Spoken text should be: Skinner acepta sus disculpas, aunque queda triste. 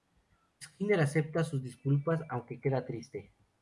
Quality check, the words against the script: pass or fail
pass